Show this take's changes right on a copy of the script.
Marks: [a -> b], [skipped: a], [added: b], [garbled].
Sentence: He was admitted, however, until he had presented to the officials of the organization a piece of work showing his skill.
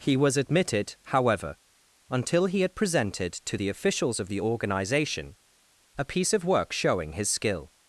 He was admitted, however, until he had presented to the officials of the organization a piece of work showing his skill.